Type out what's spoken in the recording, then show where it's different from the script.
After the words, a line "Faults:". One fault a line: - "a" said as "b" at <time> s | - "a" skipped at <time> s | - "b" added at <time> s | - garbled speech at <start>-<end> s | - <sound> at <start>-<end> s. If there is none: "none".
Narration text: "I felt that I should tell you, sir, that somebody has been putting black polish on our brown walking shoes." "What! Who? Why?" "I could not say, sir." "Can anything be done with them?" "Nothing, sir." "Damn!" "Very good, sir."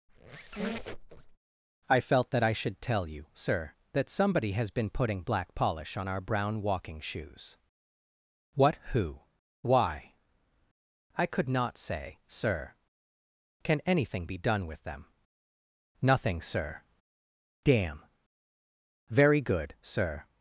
"I felt that I should tell you, sir, that somebody has been putting black polish on our brown walking shoes." "What! Who? Why?" "I could not say, sir." "Can anything be done with them?" "Nothing, sir." "Damn!" "Very good, sir."
Faults:
- squeak at 0.1-1.4 s